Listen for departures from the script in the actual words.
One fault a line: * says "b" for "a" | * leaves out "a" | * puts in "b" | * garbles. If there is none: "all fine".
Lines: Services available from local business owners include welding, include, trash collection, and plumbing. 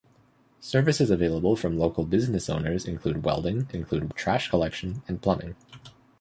all fine